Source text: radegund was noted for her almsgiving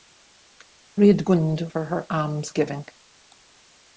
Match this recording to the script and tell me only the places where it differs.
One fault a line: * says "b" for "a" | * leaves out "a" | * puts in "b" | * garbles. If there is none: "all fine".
* leaves out "was noted"